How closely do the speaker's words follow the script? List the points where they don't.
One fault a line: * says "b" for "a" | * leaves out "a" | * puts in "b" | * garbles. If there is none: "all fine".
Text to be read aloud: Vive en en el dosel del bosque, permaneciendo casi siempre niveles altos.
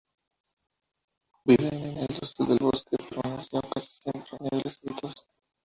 all fine